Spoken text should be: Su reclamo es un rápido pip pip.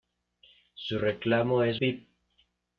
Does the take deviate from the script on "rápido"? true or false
true